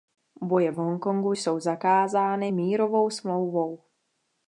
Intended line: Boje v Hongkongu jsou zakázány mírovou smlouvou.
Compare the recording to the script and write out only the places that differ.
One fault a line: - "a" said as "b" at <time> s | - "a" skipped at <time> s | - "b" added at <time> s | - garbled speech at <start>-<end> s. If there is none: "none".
none